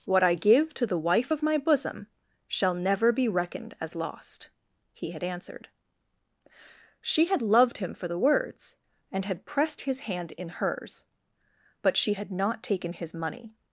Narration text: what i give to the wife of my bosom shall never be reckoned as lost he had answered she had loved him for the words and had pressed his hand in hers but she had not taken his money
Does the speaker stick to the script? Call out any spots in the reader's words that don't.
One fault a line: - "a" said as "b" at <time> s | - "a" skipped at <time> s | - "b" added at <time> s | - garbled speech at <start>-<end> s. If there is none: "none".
none